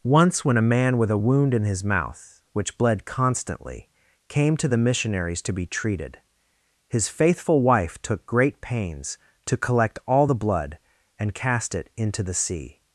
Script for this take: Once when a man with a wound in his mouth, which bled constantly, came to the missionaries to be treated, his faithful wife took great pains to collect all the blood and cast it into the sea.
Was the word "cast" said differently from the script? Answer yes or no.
no